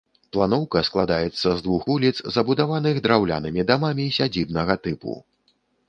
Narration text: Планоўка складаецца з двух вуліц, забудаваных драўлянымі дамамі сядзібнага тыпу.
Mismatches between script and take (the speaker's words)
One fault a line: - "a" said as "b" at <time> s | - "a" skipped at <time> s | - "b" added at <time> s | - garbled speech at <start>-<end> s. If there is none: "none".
none